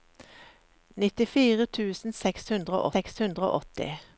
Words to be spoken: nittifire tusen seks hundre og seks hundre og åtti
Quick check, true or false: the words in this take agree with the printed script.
true